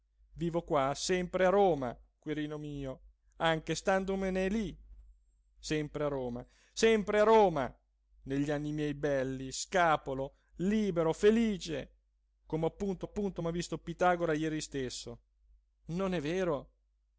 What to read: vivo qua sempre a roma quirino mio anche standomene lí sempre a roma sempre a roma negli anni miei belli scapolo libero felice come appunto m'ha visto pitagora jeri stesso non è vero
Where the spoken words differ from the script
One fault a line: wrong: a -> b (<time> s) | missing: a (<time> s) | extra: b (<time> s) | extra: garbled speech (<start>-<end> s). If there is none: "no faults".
extra: appunto (13.0 s)